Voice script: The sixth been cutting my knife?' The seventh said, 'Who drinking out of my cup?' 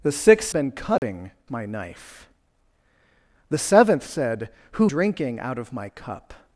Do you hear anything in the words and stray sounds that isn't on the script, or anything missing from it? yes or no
yes